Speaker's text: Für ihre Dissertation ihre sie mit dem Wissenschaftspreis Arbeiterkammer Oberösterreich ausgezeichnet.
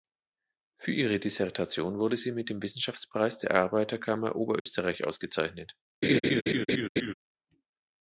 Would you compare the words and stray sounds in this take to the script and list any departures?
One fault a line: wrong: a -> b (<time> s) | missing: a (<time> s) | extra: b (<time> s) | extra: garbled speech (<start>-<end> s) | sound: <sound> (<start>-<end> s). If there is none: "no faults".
wrong: ihre -> wurde (2.0 s)
extra: der (3.4 s)
sound: dropout (4.6-4.7 s)
sound: laugh (6.0-7.1 s)